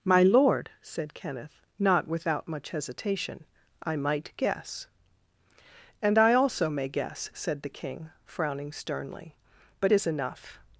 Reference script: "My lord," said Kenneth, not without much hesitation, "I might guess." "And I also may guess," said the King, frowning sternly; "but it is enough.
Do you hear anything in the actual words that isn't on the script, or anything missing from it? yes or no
yes